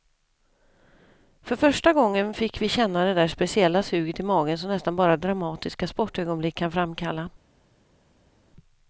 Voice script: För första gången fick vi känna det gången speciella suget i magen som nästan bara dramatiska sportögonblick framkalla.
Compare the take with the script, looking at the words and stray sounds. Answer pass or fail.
fail